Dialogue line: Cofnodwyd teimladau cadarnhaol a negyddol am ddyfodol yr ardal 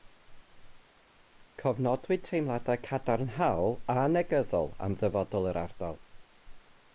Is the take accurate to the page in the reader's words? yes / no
yes